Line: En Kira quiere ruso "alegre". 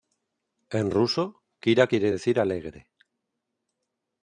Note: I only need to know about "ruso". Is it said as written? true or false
false